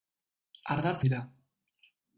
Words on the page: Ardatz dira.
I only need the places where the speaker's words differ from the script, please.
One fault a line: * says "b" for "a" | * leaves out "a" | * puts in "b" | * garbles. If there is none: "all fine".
all fine